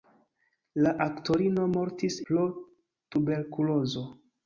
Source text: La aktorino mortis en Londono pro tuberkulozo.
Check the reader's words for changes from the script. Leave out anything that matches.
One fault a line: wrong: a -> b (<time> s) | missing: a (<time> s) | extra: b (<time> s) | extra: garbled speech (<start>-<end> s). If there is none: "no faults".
missing: en Londono (2.2 s)